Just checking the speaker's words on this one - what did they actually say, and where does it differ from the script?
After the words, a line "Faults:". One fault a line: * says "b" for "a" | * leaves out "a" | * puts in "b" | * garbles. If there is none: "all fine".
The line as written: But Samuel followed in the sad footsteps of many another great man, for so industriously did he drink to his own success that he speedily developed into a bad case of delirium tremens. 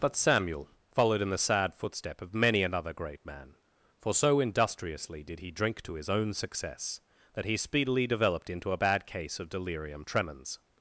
But Samuel followed in the sad footstep of many another great man, for so industriously did he drink to his own success that he speedily developed into a bad case of delirium tremens.
Faults:
* says "footstep" for "footsteps"